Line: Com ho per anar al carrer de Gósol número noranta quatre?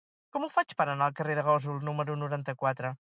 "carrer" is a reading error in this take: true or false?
false